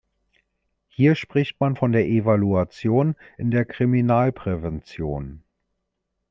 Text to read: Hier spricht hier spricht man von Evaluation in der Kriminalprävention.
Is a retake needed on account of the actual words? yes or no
yes